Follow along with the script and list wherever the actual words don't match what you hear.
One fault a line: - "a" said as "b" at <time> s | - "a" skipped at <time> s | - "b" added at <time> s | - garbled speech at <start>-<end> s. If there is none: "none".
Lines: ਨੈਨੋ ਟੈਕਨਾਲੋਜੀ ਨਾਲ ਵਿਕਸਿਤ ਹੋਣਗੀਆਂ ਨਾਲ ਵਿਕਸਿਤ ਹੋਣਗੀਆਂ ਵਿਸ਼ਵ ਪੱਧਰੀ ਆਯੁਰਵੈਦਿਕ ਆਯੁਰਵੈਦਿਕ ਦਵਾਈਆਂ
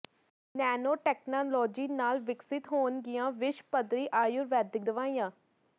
- "ਨਾਲ ਵਿਕਸਿਤ ਹੋਣਗੀਆਂ" skipped at 3.3 s
- "ਆਯੁਰਵੈਦਿਕ" skipped at 4.8 s